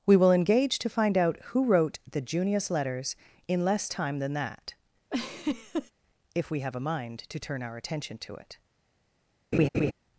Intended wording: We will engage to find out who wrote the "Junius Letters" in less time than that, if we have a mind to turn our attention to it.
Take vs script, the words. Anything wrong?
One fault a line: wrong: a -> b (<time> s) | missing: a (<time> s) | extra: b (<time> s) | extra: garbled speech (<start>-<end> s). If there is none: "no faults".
no faults